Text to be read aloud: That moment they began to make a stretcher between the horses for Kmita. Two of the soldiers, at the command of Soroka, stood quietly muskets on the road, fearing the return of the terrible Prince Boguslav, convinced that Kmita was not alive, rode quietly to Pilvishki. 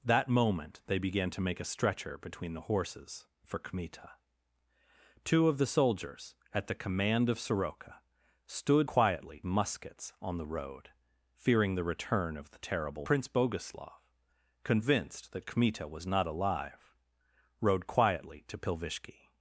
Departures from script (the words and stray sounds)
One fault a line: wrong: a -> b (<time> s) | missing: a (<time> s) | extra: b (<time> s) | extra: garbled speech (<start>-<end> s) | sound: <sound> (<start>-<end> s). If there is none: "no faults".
no faults